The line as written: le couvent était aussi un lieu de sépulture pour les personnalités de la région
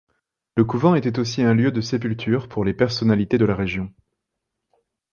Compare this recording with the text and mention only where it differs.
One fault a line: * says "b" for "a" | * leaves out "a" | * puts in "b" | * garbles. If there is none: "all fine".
all fine